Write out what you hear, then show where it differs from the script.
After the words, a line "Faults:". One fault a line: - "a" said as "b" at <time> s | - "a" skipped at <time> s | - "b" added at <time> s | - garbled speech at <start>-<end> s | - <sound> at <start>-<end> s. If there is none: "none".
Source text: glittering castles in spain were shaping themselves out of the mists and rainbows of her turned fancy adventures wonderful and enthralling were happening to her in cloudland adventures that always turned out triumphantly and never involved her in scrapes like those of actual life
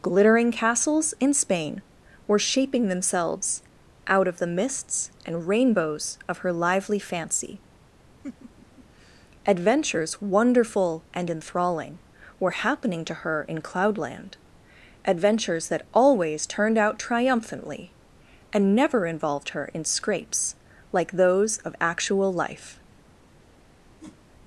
glittering castles in spain were shaping themselves out of the mists and rainbows of her lively fancy adventures wonderful and enthralling were happening to her in cloudland adventures that always turned out triumphantly and never involved her in scrapes like those of actual life
Faults:
- "turned" said as "lively" at 6.5 s
- laugh at 8.2-8.8 s
- whoosh at 24.0-24.2 s